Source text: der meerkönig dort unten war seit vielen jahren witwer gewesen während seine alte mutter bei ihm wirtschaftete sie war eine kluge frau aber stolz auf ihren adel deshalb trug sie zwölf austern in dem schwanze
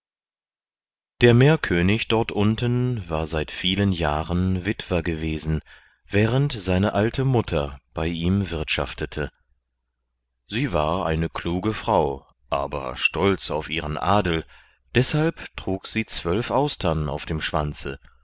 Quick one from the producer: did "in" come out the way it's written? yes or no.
no